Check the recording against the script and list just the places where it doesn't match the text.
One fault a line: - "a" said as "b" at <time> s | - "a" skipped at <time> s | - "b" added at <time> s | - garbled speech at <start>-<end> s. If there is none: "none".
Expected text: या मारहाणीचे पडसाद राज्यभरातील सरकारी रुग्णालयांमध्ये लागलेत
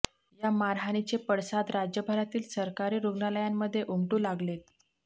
- "उमटू" added at 3.9 s